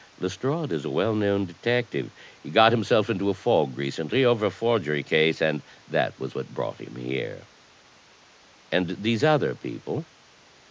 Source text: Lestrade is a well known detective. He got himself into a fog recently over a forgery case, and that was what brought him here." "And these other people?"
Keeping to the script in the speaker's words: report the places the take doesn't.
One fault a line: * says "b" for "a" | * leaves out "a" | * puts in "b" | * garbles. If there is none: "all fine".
all fine